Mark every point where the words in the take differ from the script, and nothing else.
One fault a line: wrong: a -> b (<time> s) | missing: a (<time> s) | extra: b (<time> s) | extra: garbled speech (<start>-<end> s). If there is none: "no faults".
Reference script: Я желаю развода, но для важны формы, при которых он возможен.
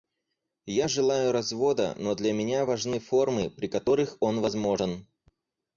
extra: меня (2.3 s)